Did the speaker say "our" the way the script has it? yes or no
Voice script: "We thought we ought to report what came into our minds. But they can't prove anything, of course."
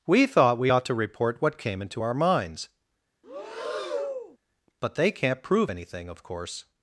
yes